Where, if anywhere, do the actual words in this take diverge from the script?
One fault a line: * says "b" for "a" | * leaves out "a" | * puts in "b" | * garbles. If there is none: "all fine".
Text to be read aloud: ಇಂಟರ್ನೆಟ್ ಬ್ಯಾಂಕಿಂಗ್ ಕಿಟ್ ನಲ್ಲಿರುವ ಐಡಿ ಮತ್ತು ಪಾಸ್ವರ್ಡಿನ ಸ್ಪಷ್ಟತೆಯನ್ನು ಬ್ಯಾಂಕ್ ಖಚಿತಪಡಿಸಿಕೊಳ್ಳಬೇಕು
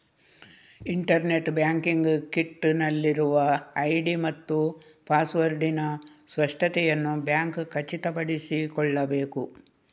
all fine